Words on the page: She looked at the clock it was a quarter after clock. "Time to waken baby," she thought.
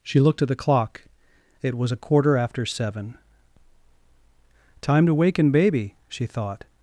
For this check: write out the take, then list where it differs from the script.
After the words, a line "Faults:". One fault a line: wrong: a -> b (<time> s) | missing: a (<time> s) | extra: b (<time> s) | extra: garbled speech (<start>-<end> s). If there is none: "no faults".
She looked at the clock it was a quarter after seven. "Time to waken baby," she thought.
Faults:
wrong: clock -> seven (2.6 s)